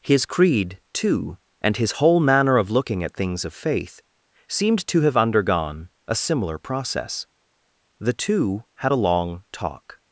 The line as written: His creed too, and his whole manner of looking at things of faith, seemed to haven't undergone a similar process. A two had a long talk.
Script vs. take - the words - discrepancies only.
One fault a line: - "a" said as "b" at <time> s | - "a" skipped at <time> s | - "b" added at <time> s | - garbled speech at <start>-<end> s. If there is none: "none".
- "haven't" said as "have" at 5.0 s
- "A" said as "The" at 8.0 s